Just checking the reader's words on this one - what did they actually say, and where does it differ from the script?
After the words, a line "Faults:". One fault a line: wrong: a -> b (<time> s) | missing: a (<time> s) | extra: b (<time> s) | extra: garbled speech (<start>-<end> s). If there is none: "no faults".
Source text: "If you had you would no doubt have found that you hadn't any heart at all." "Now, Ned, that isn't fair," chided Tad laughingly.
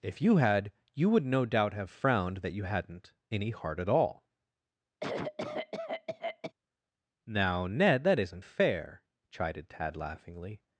"If you had you would no doubt have frowned that you hadn't any heart at all." "Now, Ned, that isn't fair," chided Tad laughingly.
Faults:
wrong: found -> frowned (1.9 s)